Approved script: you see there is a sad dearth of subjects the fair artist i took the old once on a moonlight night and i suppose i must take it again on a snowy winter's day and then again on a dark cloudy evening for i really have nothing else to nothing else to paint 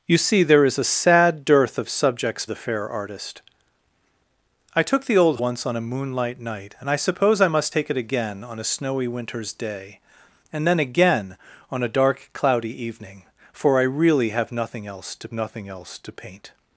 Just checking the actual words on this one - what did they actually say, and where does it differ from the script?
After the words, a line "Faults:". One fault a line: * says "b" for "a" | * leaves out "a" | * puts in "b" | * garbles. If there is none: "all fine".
you see there is a sad dearth of subjects the fair artist i took the old once on a moonlight night and i suppose i must take it again on a snowy winter's day and then again on a dark cloudy evening for i really have nothing else to nothing else to paint
Faults:
all fine